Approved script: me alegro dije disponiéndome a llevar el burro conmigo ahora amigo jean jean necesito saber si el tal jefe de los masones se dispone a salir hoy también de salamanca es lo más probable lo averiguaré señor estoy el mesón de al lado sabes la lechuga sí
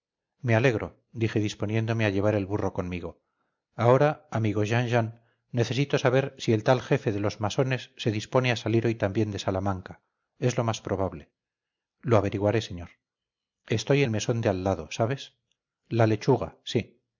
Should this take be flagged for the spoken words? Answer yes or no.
no